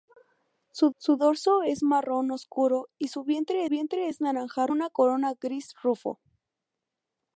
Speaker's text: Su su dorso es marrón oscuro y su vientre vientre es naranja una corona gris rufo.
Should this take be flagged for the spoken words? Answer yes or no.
no